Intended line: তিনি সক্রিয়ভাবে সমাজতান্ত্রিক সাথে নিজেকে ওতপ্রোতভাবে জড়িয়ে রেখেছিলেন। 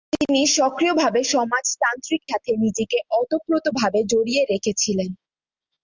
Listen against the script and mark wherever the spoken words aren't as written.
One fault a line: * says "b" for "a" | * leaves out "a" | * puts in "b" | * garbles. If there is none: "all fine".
all fine